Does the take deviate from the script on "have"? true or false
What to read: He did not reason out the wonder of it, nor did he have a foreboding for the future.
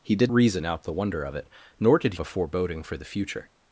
true